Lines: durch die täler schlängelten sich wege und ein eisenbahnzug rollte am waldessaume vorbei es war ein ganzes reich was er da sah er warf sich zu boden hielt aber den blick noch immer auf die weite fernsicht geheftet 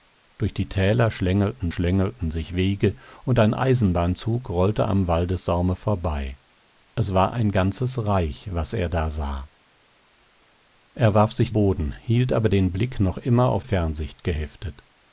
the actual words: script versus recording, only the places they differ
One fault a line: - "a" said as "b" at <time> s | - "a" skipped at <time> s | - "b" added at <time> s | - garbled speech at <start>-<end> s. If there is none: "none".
- "schlängelten" added at 1.7 s
- "zu" skipped at 11.5 s
- "die weite" skipped at 13.7 s